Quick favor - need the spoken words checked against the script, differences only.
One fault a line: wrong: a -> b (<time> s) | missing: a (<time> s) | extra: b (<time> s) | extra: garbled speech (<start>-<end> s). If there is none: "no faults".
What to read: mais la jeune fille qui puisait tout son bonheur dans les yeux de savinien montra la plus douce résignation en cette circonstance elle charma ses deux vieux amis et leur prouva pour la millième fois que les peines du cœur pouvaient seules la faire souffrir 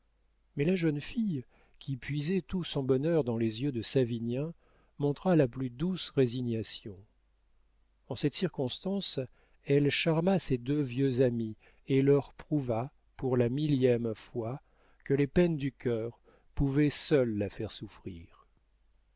no faults